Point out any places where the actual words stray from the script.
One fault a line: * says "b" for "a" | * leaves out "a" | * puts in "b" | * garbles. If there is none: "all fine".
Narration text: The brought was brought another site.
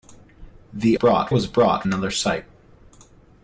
all fine